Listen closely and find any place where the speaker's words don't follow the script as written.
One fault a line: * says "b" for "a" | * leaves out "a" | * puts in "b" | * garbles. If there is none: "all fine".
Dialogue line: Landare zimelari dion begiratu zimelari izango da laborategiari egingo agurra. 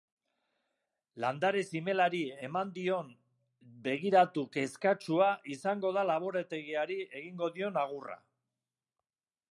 * puts in "eman"
* says "kezkatsua" for "zimelari"
* puts in "dion"